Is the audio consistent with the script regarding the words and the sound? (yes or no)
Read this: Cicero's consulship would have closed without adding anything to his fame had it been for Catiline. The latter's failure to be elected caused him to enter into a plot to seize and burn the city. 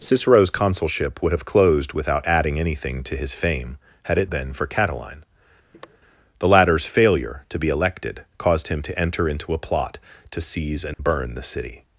no